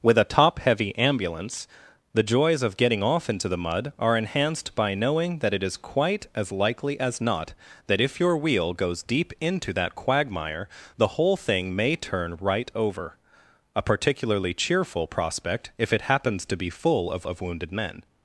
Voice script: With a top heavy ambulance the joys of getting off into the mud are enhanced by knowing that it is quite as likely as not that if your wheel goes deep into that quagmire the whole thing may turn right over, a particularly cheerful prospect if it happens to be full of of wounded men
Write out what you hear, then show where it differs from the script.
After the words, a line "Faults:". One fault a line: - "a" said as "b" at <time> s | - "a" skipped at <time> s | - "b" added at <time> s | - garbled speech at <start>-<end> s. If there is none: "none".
With a top heavy ambulance the joys of getting off into the mud are enhanced by knowing that it is quite as likely as not that if your wheel goes deep into that quagmire the whole thing may turn right over, a particularly cheerful prospect if it happens to be full of of wounded men
Faults:
none